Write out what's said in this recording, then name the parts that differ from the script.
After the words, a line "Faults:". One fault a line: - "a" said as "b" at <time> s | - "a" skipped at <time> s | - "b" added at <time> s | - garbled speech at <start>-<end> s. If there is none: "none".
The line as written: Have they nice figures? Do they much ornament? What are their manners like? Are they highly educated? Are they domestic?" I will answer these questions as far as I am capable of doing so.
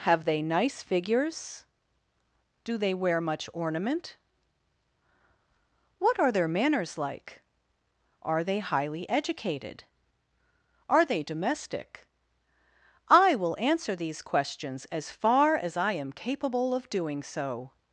Have they nice figures? Do they wear much ornament? What are their manners like? Are they highly educated? Are they domestic?" I will answer these questions as far as I am capable of doing so.
Faults:
- "wear" added at 2.9 s